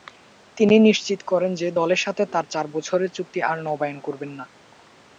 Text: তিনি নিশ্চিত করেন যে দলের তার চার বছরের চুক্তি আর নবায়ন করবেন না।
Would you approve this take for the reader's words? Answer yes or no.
no